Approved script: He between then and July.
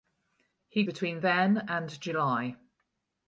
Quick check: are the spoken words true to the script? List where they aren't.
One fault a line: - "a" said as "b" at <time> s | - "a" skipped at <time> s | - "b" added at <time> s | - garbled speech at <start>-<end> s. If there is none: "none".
none